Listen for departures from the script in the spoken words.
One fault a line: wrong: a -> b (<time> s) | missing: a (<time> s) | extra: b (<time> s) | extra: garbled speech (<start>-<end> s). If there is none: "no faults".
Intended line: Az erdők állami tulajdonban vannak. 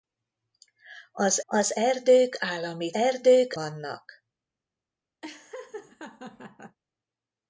extra: az (1.4 s)
wrong: tulajdonban -> erdők (2.9 s)